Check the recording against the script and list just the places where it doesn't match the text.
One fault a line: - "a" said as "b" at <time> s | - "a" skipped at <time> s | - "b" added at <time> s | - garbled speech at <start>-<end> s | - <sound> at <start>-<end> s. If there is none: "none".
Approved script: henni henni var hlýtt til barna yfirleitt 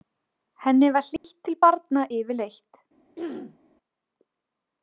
- "henni" skipped at 0.9 s
- dropout at 1.2-1.2 s
- throat clearing at 3.2-3.6 s